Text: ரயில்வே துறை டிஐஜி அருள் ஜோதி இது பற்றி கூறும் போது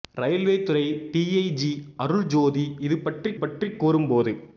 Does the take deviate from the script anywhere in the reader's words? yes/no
yes